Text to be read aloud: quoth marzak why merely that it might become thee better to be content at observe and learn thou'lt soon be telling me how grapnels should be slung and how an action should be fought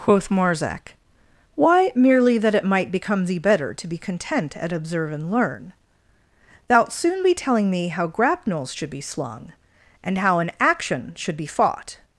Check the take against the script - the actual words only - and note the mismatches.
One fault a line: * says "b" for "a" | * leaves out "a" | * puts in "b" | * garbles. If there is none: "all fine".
all fine